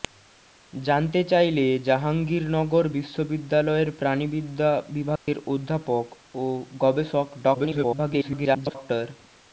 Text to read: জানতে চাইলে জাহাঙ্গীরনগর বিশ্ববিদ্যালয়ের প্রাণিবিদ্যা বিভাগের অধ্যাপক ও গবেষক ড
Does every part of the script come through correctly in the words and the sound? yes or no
no